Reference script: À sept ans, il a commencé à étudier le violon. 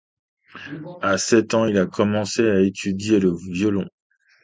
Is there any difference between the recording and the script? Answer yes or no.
no